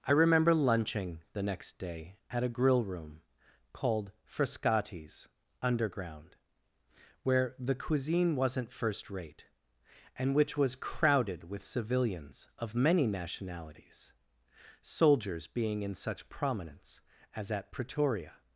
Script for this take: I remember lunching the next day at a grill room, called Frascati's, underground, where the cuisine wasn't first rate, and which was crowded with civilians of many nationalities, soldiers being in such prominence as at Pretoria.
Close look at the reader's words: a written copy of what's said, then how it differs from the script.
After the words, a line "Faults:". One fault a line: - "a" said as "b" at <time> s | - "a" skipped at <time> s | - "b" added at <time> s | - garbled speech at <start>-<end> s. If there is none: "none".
I remember lunching the next day at a grill room, called Frascati's, underground, where the cuisine wasn't first rate, and which was crowded with civilians of many nationalities, soldiers being in such prominence as at Pretoria.
Faults:
none